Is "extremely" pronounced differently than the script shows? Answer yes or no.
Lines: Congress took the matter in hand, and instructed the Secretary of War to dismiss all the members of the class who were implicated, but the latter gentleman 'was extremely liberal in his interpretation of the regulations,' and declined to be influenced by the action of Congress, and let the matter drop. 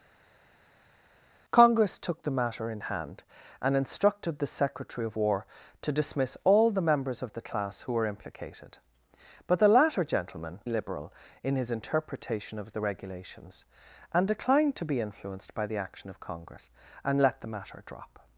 yes